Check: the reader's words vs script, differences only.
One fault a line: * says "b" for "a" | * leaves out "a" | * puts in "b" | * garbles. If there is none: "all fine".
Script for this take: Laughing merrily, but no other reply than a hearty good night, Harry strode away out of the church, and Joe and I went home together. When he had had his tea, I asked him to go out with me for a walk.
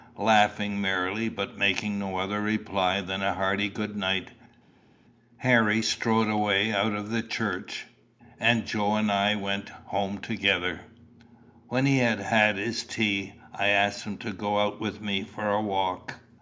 * puts in "making"